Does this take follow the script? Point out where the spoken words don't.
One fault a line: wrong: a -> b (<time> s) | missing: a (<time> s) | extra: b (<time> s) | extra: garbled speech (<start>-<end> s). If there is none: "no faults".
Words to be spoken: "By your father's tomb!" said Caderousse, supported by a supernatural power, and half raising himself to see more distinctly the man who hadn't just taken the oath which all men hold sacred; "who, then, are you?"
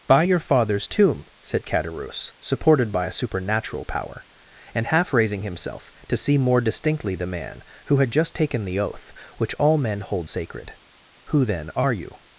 wrong: hadn't -> had (8.0 s)